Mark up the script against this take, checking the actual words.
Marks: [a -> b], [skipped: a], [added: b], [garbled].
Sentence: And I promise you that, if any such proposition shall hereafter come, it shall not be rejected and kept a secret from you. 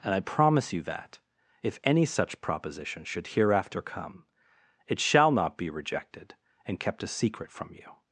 And I promise you that, if any such proposition [shall -> should] hereafter come, it shall not be rejected and kept a secret from you.